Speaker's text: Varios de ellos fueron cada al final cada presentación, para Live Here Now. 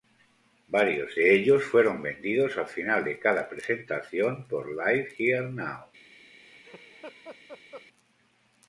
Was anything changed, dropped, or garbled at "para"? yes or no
yes